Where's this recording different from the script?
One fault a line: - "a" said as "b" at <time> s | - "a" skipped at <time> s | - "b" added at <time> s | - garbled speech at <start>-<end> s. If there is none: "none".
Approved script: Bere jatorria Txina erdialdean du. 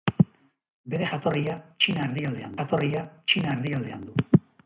- "jatorria Txina erdialdean" added at 2.6 s